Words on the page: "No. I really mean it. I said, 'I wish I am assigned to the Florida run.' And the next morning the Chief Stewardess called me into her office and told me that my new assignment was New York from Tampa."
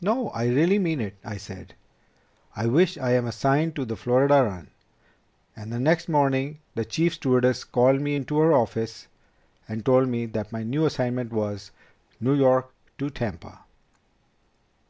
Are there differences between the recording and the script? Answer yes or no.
yes